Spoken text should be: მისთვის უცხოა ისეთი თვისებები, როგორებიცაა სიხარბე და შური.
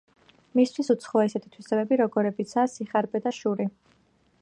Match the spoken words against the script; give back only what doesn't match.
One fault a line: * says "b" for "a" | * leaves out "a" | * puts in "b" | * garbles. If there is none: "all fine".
all fine